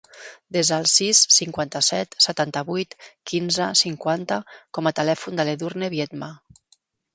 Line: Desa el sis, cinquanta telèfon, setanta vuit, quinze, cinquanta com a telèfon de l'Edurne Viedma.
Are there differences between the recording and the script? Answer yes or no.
yes